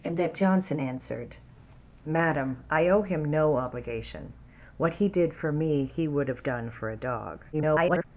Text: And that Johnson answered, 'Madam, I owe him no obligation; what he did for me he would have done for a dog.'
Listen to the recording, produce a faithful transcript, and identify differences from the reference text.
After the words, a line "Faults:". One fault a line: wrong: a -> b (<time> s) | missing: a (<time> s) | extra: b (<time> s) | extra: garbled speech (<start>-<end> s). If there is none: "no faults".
And that Johnson answered, 'Madam, I owe him no obligation; what he did for me he would have done for a dog.' [garbled]
Faults:
extra: garbled speech (7.5-8.0 s)